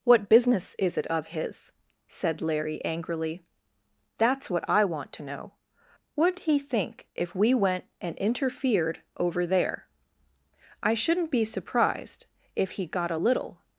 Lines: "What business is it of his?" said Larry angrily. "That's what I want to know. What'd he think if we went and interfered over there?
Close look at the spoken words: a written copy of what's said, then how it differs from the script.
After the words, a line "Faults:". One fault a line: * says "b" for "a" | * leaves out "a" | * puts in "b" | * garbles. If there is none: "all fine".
"What business is it of his?" said Larry angrily. "That's what I want to know. What'd he think if we went and interfered over there? I shouldn't be surprised if he got a little
Faults:
* puts in "I shouldn't be surprised if he got a little"